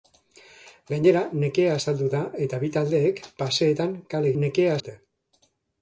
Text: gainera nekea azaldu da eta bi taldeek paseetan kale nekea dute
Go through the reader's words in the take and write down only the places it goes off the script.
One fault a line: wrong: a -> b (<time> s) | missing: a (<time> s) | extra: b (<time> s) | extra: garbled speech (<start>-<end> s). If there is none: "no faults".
no faults